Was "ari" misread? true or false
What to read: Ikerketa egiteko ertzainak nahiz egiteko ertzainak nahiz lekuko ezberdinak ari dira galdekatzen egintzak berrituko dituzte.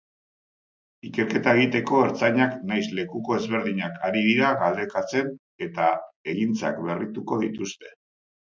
false